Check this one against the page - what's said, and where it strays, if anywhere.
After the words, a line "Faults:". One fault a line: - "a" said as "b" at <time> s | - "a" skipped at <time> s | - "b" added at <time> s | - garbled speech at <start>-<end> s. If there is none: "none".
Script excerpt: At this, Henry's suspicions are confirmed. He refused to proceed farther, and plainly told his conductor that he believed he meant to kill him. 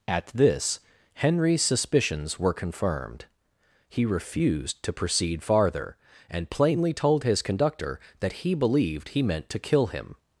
At this, Henry's suspicions were confirmed. He refused to proceed farther, and plainly told his conductor that he believed he meant to kill him.
Faults:
- "are" said as "were" at 2.4 s